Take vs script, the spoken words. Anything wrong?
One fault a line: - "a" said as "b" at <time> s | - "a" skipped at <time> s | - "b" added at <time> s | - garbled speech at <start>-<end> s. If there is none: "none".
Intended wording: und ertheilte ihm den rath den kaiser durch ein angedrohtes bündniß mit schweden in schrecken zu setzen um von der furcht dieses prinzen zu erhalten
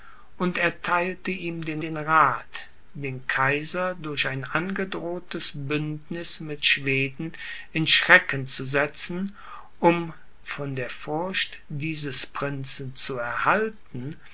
- "den" added at 1.8 s